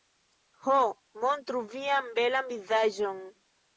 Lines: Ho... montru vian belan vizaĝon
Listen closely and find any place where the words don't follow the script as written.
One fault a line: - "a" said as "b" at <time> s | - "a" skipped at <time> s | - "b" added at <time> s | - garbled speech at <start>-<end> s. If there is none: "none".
none